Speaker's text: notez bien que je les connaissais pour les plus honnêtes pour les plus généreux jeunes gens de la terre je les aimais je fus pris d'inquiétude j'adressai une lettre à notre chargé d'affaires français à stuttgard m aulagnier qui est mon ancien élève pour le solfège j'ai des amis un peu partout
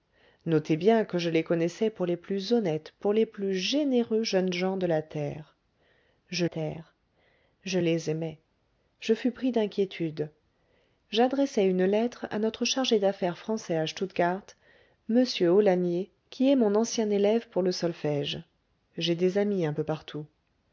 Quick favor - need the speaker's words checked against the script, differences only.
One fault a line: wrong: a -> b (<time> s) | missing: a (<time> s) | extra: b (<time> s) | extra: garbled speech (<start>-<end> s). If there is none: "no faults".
extra: terre je (6.4 s)